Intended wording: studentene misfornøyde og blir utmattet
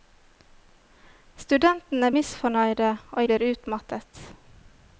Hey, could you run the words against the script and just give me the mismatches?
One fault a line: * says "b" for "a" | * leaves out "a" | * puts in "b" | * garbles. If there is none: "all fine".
all fine